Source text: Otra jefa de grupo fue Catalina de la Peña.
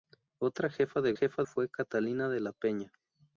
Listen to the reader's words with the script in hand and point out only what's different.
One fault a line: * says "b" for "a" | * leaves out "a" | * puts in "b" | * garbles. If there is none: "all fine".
* says "jefa" for "grupo"